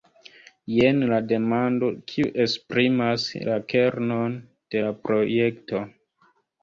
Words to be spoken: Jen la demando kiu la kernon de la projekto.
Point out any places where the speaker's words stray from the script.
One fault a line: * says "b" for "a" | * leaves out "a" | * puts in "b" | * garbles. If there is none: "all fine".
* puts in "esprimas"